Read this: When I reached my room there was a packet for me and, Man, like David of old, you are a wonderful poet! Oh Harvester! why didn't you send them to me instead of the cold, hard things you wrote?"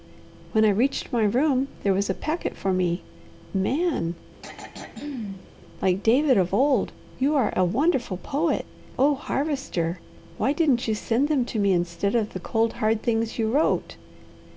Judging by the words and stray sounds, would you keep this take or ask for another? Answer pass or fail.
fail